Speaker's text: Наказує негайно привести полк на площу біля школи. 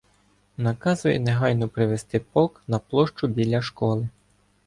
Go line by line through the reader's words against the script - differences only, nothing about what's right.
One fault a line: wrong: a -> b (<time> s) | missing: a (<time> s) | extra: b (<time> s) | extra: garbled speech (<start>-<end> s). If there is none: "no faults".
no faults